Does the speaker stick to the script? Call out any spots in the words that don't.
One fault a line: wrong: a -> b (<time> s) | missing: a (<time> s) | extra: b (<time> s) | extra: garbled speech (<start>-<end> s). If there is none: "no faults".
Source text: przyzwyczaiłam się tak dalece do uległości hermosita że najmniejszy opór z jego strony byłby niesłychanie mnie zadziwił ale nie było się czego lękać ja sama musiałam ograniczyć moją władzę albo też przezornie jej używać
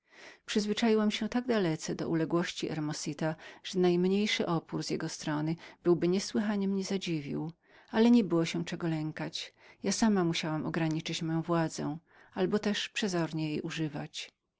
no faults